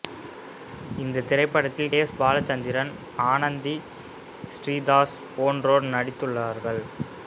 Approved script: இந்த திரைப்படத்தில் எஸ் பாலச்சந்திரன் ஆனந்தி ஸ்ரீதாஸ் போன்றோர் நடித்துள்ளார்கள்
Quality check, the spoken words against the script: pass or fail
pass